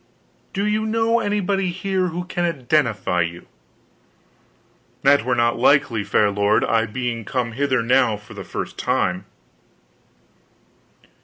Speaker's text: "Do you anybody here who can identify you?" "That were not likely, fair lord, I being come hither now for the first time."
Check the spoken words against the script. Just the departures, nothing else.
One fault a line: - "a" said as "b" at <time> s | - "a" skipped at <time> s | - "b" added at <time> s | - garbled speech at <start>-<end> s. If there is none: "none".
- "know" added at 0.9 s